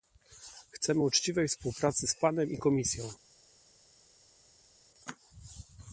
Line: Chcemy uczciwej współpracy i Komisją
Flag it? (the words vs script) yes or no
yes